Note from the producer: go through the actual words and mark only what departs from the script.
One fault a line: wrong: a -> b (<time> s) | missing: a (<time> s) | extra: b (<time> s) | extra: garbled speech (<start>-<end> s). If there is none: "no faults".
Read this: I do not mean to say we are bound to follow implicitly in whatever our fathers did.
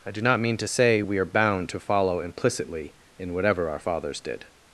no faults